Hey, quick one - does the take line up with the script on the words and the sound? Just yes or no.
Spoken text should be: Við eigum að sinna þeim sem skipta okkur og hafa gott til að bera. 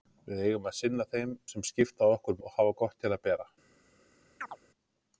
no